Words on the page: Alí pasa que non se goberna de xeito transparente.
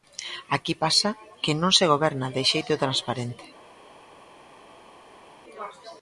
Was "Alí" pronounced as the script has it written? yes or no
no